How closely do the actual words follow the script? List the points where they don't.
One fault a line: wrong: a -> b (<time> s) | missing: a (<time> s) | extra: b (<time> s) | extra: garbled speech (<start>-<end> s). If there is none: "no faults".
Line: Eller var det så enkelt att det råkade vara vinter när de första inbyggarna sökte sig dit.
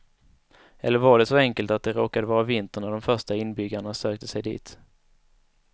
no faults